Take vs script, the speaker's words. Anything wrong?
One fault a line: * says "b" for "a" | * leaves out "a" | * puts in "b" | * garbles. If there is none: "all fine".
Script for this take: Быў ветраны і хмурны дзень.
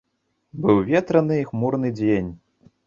all fine